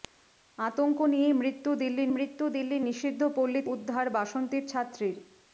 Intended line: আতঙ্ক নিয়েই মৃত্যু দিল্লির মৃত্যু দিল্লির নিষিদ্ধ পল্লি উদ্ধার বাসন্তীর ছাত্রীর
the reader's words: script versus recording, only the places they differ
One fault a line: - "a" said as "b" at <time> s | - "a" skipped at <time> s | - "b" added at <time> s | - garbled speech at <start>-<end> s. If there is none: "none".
none